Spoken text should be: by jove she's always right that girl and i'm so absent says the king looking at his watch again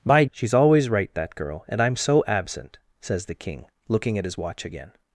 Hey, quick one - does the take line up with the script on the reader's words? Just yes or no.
no